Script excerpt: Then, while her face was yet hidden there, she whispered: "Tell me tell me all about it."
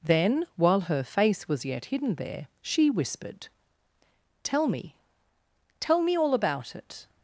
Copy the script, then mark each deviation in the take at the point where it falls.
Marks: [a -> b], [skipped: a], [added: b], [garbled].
Then, while her face was yet hidden there, she whispered: "Tell me tell me all about it."